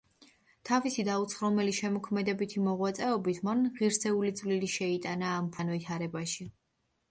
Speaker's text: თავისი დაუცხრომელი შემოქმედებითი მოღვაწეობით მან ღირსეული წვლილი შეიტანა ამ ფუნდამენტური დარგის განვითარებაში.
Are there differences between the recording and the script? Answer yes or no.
yes